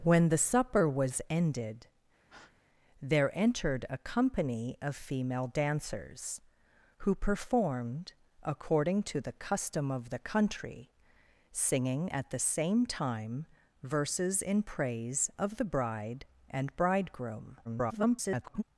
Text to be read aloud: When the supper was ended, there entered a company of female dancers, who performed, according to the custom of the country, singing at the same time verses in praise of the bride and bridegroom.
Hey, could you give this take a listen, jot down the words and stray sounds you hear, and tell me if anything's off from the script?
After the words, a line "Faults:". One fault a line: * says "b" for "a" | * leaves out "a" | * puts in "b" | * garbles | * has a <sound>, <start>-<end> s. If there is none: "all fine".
When the supper was ended, there entered a company of female dancers, who performed, according to the custom of the country, singing at the same time verses in praise of the bride and bridegroom. [garbled]
Faults:
* has a breath, 2.3-2.6 s
* garbles